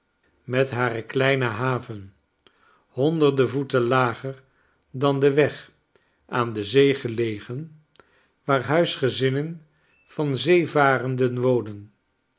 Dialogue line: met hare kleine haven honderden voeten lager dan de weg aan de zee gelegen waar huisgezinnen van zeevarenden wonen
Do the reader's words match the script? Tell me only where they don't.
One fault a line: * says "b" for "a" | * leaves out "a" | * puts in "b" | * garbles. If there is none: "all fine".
all fine